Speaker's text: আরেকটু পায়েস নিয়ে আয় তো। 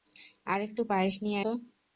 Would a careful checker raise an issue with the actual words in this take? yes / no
yes